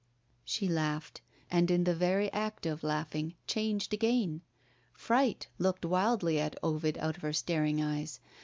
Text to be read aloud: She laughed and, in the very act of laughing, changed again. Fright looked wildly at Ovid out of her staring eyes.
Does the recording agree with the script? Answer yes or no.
yes